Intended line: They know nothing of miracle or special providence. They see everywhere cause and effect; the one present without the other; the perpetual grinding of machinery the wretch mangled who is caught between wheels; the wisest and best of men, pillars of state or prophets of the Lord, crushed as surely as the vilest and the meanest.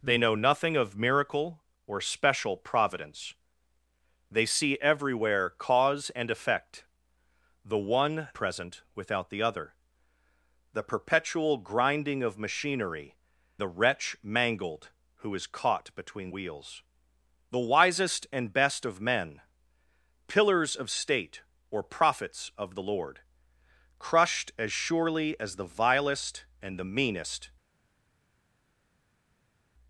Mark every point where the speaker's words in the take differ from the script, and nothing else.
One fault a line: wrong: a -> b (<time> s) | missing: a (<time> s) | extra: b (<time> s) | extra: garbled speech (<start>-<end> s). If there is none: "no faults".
no faults